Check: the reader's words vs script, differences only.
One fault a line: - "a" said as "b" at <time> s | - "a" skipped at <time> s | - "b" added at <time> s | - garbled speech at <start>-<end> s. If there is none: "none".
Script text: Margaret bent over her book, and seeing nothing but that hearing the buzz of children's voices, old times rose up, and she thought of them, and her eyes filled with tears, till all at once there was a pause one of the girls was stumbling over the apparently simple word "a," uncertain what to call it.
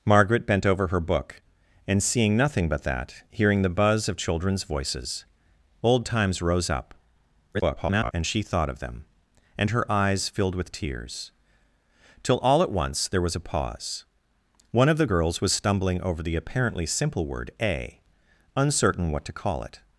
- garbled speech at 7.5-8.1 s